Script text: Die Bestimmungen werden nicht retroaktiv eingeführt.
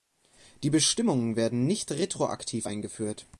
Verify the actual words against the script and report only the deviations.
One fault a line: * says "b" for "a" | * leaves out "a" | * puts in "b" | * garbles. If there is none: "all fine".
all fine